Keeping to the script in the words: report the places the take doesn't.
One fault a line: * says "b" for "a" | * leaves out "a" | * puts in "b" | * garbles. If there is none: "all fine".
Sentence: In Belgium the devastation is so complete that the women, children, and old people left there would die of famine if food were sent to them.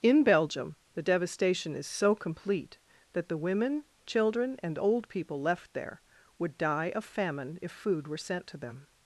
all fine